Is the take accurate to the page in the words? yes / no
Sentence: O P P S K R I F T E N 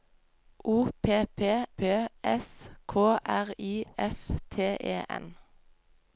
no